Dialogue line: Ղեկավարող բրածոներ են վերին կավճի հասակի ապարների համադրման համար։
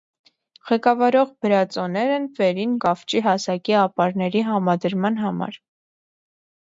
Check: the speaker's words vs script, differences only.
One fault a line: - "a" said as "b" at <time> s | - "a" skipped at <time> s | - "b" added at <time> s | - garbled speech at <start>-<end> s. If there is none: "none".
none